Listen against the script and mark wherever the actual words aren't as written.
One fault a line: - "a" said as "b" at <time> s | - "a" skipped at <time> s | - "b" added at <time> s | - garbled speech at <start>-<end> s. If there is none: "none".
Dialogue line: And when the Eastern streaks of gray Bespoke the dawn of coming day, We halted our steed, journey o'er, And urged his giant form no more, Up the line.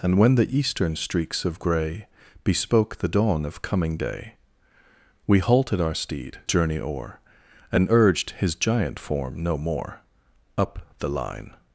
none